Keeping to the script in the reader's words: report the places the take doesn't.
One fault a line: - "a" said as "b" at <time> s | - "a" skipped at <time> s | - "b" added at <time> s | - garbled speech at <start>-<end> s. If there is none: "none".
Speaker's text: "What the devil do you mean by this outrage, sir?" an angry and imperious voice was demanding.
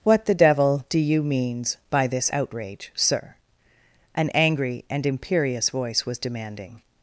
- "mean" said as "means" at 1.2 s